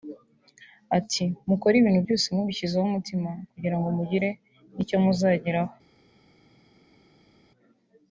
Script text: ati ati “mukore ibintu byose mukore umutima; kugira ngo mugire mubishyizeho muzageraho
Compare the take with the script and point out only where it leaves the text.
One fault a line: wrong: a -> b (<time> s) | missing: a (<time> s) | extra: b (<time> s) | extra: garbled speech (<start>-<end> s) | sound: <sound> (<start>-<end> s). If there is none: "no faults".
missing: ati (1.2 s)
wrong: mukore -> mubishyizeho (2.4 s)
wrong: mubishyizeho -> icyo (4.8 s)